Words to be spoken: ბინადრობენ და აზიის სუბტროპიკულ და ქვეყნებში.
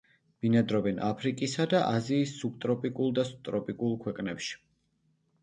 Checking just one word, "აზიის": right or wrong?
right